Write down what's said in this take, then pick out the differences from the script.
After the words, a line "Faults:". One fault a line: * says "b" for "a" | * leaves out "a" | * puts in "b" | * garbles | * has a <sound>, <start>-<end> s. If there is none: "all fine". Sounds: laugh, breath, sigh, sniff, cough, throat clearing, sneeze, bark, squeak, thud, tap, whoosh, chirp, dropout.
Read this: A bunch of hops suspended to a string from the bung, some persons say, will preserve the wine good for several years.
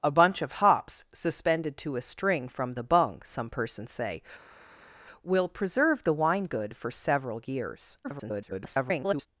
A bunch of hops suspended to a string from the bung, some persons say, will preserve the wine good for several years. [garbled]
Faults:
* garbles